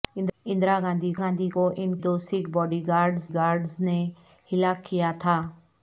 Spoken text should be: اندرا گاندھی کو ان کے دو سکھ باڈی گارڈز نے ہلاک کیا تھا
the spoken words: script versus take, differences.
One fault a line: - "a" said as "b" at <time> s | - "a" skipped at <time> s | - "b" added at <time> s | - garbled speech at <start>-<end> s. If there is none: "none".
- "گاندھی" added at 1.2 s
- "کے" skipped at 1.9 s
- "گارڈز" added at 3.3 s